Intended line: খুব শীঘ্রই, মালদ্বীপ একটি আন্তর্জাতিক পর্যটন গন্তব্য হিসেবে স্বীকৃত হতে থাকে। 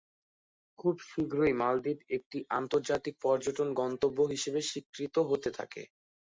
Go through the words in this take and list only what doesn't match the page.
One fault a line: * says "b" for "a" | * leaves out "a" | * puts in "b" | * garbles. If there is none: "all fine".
all fine